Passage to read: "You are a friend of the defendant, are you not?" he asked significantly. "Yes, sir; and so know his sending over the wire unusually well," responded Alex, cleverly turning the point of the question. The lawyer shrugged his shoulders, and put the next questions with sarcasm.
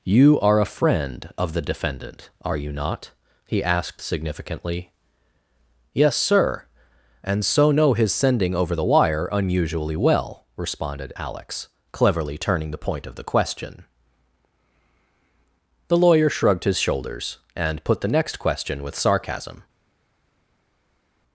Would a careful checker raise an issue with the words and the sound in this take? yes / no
yes